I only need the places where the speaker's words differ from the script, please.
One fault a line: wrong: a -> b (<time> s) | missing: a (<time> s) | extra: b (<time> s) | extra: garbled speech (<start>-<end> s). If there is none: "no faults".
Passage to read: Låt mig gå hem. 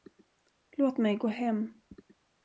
no faults